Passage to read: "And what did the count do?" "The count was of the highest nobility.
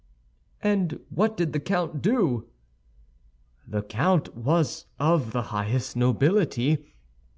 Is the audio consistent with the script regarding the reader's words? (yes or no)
yes